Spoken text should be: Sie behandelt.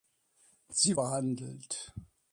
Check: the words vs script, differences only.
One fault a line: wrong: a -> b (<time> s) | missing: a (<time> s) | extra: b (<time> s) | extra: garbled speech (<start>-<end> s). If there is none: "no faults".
no faults